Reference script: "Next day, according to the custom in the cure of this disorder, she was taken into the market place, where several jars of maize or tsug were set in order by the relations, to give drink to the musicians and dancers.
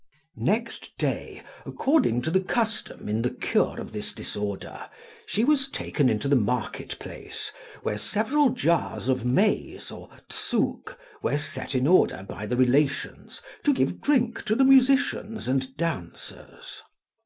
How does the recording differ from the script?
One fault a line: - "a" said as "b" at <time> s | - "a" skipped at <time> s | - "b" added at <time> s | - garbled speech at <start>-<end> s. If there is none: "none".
none